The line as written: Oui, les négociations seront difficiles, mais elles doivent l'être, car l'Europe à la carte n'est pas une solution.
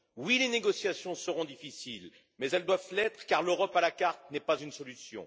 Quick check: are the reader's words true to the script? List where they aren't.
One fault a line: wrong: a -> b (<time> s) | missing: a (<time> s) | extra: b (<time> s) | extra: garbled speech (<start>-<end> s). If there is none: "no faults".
no faults